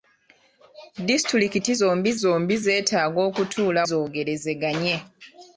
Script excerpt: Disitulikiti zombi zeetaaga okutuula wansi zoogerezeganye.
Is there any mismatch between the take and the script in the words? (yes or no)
yes